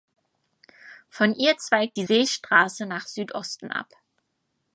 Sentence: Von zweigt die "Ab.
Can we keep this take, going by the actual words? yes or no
no